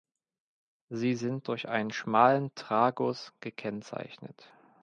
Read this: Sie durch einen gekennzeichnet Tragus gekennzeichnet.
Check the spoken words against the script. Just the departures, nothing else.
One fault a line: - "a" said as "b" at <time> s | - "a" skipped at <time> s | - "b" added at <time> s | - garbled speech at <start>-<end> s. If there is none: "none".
- "sind" added at 1.1 s
- "gekennzeichnet" said as "schmalen" at 1.9 s